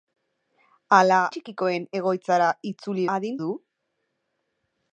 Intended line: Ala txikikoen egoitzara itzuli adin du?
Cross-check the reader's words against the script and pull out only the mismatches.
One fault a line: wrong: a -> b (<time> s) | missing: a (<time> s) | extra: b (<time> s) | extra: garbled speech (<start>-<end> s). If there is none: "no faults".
no faults